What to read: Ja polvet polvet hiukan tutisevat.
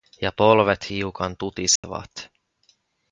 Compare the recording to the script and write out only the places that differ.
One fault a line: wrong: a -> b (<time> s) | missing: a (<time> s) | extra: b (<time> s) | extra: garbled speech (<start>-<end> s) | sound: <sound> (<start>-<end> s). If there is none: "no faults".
missing: polvet (0.9 s)
sound: dropout (1.8-1.8 s)